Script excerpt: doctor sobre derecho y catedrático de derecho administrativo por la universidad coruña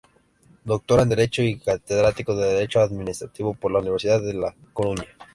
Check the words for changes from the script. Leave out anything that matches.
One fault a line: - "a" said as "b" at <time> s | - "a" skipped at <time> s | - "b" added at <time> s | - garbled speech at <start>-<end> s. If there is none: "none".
- "sobre" said as "en" at 1.0 s
- "de la" added at 4.2 s